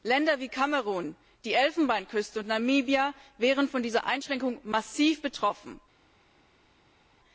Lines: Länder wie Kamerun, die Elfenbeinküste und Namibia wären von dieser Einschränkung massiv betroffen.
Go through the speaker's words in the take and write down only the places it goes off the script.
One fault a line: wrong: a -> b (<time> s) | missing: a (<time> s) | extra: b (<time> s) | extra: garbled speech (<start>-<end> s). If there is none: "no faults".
no faults